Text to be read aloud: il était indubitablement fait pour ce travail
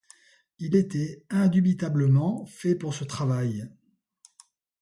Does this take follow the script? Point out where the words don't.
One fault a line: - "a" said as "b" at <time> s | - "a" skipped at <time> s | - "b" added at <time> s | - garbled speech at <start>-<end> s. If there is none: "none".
none